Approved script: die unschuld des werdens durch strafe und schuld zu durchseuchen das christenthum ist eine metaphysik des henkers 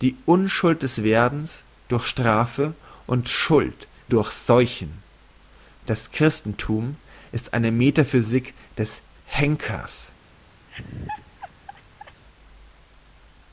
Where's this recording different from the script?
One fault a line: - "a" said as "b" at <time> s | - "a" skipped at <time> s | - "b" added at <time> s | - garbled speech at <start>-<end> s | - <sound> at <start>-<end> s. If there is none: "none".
- "zu" skipped at 3.9 s
- laugh at 10.7-12.2 s